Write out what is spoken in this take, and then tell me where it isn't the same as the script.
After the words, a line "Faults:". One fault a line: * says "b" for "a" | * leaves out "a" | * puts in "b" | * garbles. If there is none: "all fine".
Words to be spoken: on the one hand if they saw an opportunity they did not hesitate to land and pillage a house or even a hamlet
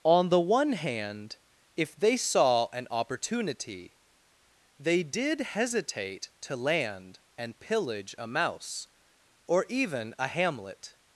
on the one hand if they saw an opportunity they did hesitate to land and pillage a mouse or even a hamlet
Faults:
* leaves out "not"
* says "mouse" for "house"